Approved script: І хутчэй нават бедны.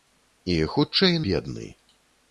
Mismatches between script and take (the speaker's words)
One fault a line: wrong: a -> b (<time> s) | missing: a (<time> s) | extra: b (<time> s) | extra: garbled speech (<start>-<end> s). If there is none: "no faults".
missing: нават (1.2 s)